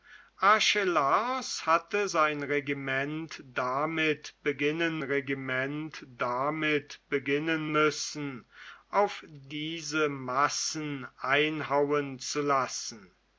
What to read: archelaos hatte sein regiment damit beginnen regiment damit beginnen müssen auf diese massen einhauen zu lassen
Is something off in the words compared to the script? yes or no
no